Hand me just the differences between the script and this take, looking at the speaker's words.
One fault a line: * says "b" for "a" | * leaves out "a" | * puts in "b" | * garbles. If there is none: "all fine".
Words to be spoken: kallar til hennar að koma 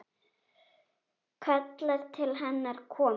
all fine